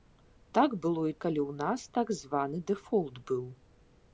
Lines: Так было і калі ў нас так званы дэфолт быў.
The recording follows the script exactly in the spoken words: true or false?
true